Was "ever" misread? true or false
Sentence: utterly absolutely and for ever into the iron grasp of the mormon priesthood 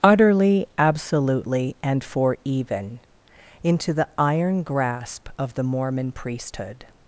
true